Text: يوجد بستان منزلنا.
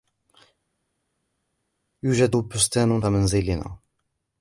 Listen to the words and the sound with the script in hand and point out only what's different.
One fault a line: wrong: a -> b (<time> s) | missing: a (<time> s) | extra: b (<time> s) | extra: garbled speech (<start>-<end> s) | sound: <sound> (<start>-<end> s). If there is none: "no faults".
no faults